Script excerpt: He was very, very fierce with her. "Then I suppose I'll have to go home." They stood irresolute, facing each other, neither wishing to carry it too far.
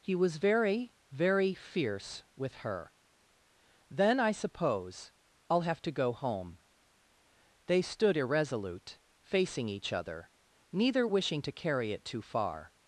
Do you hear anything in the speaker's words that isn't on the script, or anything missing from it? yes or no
no